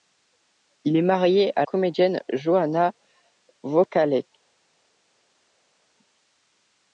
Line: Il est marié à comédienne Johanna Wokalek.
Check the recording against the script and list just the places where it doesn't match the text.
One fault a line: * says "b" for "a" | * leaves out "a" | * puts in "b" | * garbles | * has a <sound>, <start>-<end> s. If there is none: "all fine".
all fine